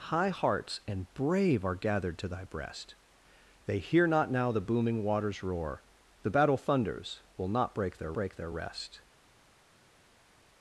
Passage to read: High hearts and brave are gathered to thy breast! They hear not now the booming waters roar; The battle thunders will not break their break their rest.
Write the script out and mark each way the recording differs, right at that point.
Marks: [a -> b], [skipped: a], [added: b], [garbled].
High hearts and brave are gathered to thy breast! They hear not now the booming waters roar; The battle thunders will not break their break their rest.